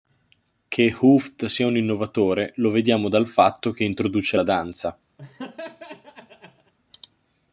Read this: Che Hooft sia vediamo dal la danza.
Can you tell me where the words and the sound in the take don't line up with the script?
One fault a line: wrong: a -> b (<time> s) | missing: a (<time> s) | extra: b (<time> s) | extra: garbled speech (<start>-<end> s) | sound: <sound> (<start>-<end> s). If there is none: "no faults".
extra: un innovatore lo (1.7 s)
extra: fatto che introduce (3.3 s)
sound: laugh (5.2-6.7 s)